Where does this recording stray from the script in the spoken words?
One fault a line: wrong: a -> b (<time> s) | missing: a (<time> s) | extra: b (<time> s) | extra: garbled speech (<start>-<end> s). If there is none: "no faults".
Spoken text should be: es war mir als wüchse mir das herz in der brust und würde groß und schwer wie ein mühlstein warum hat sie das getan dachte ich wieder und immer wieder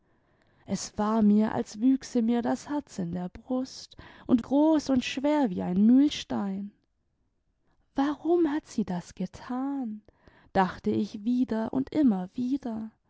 missing: würde (4.4 s)